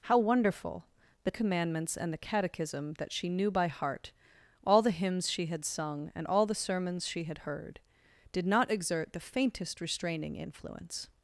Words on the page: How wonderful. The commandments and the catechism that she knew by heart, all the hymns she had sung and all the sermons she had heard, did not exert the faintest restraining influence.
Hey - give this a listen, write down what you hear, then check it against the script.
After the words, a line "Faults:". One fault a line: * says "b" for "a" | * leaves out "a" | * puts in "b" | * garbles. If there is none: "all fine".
How wonderful. The commandments and the catechism that she knew by heart, all the hymns she had sung and all the sermons she had heard, did not exert the faintest restraining influence.
Faults:
all fine